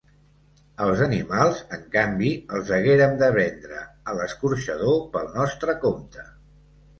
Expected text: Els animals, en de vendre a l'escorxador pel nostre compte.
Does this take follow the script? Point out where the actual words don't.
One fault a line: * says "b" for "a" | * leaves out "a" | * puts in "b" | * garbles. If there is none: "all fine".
* puts in "canvi els haguérem"